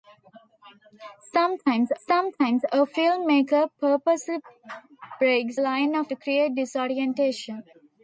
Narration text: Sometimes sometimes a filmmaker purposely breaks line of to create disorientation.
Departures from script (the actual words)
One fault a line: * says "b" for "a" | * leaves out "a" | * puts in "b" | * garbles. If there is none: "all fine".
all fine